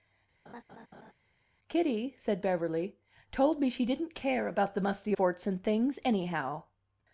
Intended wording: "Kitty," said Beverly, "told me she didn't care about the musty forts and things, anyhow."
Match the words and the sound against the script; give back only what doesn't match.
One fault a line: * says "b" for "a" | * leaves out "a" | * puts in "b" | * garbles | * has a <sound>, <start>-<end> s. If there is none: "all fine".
* has a laugh, 0.5-1.1 s